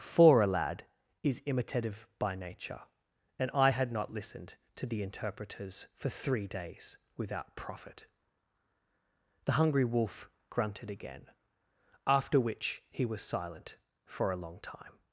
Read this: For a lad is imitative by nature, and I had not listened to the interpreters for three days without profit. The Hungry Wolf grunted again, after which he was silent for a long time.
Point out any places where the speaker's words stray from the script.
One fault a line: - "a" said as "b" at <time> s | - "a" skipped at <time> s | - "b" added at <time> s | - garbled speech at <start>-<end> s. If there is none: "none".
none